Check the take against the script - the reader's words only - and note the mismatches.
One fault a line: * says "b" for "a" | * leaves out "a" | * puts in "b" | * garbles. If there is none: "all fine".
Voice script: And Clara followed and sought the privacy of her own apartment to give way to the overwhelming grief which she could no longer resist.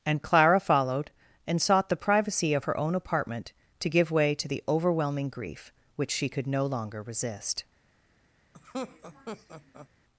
all fine